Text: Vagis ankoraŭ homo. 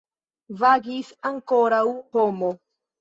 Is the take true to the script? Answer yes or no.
yes